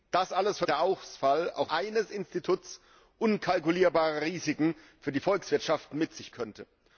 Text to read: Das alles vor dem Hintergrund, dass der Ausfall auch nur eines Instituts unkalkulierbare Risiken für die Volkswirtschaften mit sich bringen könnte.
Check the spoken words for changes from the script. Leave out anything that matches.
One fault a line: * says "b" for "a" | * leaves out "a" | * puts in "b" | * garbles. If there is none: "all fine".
* leaves out "dem Hintergrund dass"
* leaves out "nur"
* leaves out "bringen"